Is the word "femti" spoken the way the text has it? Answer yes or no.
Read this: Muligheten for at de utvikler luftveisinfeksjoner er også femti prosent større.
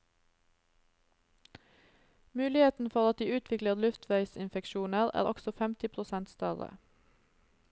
yes